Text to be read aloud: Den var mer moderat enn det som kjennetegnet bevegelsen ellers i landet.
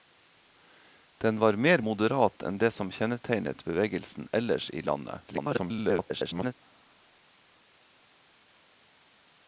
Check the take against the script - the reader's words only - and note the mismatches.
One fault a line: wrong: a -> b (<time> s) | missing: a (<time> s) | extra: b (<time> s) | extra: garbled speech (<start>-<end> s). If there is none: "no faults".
extra: garbled speech (5.3-6.5 s)